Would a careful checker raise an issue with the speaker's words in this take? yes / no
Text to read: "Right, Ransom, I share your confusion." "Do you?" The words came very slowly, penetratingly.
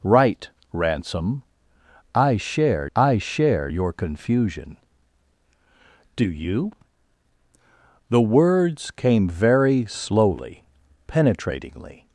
yes